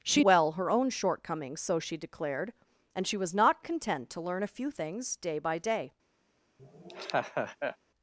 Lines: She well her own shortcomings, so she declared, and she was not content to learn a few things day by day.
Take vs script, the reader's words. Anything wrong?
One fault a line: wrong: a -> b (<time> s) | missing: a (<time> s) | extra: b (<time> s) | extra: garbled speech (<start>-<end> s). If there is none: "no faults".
no faults